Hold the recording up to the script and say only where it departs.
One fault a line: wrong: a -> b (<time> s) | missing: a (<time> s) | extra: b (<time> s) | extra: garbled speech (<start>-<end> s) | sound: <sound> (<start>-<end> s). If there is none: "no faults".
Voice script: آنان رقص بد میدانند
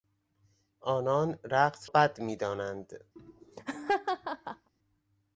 sound: laugh (3.2-4.7 s)